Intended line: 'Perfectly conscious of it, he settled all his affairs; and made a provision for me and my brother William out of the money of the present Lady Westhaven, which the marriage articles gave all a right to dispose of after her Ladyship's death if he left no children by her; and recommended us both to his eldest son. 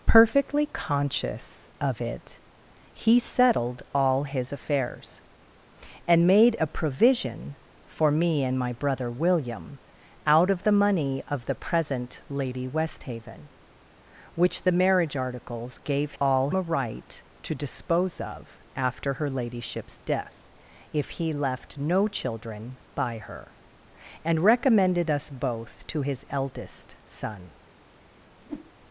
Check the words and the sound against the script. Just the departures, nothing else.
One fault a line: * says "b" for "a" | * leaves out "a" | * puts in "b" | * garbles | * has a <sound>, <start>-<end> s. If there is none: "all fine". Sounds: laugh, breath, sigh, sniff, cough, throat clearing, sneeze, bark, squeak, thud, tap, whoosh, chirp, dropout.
* has a whoosh, 28.4-28.7 s